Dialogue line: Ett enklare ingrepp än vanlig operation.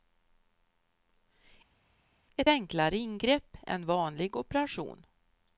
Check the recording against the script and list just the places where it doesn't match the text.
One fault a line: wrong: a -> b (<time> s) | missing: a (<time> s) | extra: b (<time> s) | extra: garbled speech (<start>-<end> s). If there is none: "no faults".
no faults